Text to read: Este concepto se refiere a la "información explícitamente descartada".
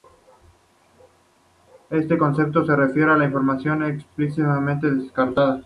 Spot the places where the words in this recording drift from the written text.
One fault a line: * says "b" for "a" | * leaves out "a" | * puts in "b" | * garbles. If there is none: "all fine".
all fine